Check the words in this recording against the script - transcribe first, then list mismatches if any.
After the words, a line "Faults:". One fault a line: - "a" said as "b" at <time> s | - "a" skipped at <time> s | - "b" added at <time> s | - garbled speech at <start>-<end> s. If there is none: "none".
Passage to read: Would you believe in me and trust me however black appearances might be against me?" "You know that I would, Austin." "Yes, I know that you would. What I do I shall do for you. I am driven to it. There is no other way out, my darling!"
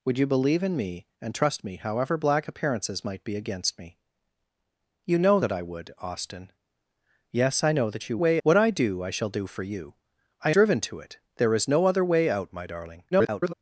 Would you believe in me and trust me however black appearances might be against me?" "You know that I would, Austin." "Yes, I know that you way. What I do I shall do for you. I driven to it. There is no other way out, my darling!" [garbled]
Faults:
- "would" said as "way" at 8.2 s
- "am" skipped at 10.5 s
- garbled speech at 13.1-13.5 s